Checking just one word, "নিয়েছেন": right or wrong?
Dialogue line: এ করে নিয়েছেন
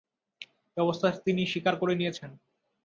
right